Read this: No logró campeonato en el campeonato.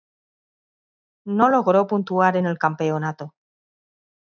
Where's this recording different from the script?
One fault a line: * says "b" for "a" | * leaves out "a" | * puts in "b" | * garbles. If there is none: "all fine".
* says "puntuar" for "campeonato"